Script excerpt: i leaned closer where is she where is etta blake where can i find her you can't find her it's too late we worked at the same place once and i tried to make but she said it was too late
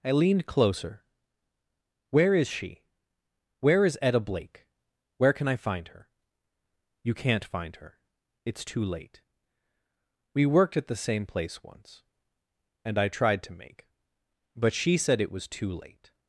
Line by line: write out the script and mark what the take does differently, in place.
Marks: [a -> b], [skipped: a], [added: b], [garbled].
i leaned closer where is she where is etta blake where can i find her you can't find her it's too late we worked at the same place once and i tried to make but she said it was too late